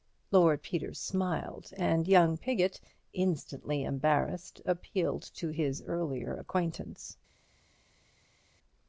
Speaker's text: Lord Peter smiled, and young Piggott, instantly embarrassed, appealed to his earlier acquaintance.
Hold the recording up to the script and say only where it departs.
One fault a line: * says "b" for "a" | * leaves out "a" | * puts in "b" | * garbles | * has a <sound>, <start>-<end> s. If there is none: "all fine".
all fine